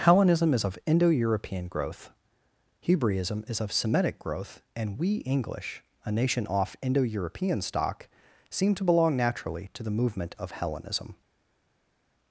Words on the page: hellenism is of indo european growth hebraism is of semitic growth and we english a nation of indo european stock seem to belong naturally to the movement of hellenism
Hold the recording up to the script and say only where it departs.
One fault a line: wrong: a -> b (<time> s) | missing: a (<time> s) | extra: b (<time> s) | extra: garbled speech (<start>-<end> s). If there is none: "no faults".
wrong: of -> off (6.5 s)